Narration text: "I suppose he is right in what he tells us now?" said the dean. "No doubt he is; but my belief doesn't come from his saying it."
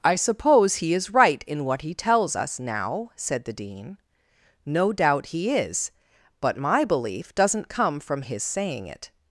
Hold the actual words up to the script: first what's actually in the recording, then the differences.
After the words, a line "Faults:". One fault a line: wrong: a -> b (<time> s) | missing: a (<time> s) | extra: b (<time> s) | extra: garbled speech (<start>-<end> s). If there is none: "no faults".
"I suppose he is right in what he tells us now?" said the dean. "No doubt he is; but my belief doesn't come from his saying it."
Faults:
no faults